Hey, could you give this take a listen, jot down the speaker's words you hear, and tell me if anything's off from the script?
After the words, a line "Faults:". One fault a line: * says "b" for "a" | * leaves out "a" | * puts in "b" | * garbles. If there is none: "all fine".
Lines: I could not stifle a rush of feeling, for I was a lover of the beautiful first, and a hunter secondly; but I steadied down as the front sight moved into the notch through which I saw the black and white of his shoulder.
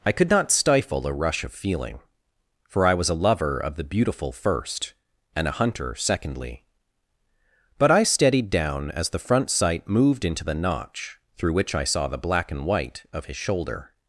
I could not stifle a rush of feeling, for I was a lover of the beautiful first, and a hunter secondly; but I steadied down as the front sight moved into the notch through which I saw the black and white of his shoulder.
Faults:
all fine